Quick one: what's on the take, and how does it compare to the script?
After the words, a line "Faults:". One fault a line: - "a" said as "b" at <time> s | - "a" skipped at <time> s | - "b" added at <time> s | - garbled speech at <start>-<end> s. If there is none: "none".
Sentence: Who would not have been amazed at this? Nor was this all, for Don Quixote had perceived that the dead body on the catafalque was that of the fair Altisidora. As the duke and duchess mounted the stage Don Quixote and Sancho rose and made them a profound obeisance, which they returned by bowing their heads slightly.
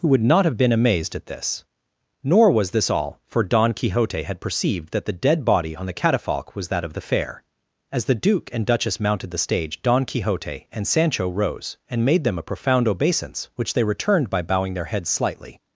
Who would not have been amazed at this? Nor was this all, for Don Quixote had perceived that the dead body on the catafalque was that of the fair. As the duke and duchess mounted the stage Don Quixote and Sancho rose and made them a profound obeisance, which they returned by bowing their heads slightly.
Faults:
- "Altisidora" skipped at 7.4 s